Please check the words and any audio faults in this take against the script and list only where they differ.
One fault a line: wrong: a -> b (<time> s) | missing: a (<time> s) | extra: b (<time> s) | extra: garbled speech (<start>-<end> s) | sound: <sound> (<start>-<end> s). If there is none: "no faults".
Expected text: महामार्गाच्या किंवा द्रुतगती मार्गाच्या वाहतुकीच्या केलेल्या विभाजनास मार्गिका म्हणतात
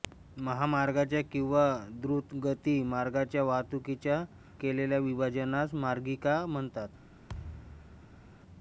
sound: thud (7.3-8.2 s)